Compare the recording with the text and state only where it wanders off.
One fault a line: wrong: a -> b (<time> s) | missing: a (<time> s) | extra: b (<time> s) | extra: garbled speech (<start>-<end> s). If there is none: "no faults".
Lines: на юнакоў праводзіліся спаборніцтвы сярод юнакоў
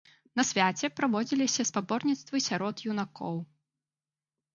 wrong: юнакоў -> свяце (0.5 s)